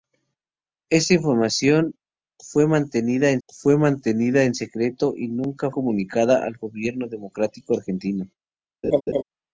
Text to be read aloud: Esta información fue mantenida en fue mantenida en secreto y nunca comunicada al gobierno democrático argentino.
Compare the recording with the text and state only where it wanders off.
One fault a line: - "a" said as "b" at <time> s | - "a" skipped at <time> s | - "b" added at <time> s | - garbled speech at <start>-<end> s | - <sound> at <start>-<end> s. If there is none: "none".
- laugh at 8.8-9.2 s